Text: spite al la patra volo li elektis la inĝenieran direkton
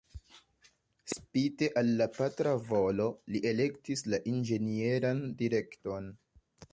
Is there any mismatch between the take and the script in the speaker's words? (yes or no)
no